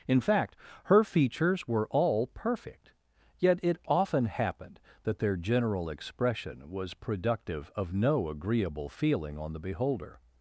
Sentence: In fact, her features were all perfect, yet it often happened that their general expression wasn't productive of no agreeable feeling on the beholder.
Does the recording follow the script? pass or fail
fail